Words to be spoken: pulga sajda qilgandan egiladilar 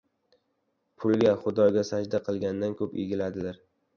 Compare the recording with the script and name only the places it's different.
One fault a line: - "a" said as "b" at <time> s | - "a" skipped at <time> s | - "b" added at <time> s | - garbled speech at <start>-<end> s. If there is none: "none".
- "xudoga" added at 1.4 s
- "ko‘p" added at 2.8 s